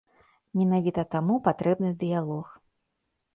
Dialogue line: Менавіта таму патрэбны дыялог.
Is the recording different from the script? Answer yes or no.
no